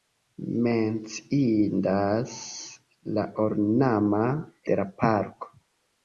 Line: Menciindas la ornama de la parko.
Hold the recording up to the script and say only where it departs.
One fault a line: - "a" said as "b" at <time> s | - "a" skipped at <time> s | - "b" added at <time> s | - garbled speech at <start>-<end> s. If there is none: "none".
none